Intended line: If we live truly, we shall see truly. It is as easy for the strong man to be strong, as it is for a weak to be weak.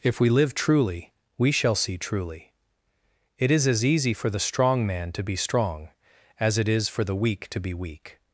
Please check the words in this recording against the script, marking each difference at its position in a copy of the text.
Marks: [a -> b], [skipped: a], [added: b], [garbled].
If we live truly, we shall see truly. It is as easy for the strong man to be strong, as it is for [a -> the] weak to be weak.